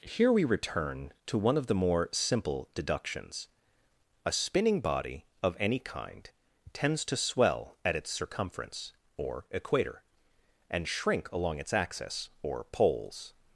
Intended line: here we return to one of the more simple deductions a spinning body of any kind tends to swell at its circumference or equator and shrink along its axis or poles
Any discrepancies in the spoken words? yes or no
no